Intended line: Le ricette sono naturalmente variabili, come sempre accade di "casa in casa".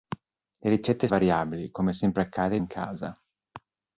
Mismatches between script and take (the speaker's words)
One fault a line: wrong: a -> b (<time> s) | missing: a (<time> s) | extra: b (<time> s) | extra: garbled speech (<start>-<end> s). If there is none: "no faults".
missing: sono naturalmente (1.1 s)
missing: di casa (2.6 s)